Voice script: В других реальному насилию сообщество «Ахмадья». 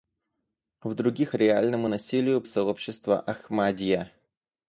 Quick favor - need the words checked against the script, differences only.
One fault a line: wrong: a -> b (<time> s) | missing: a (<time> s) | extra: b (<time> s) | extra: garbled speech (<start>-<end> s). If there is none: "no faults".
no faults